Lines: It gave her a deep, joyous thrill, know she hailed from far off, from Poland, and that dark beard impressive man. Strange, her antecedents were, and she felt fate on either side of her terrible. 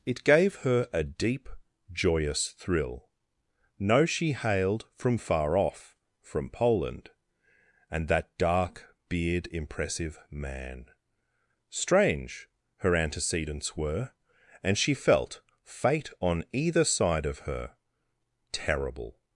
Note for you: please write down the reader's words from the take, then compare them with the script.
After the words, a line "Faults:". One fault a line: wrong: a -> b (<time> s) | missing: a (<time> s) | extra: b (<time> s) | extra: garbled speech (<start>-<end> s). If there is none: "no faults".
It gave her a deep, joyous thrill, know she hailed from far off, from Poland, and that dark beard impressive man. Strange, her antecedents were, and she felt fate on either side of her terrible.
Faults:
no faults